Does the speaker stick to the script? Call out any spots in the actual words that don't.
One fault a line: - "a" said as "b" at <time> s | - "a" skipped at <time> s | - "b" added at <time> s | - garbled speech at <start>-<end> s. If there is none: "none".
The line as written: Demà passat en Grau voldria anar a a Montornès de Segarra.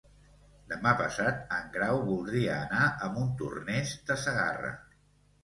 - "a" skipped at 3.1 s